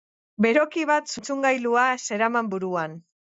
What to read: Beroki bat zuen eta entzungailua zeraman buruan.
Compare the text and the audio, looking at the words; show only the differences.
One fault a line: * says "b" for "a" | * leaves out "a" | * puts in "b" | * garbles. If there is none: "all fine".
* leaves out "zuen eta"